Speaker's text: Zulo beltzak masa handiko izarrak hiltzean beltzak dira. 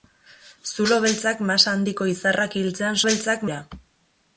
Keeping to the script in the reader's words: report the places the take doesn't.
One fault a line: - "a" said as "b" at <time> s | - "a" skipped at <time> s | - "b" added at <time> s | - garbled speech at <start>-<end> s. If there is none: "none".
none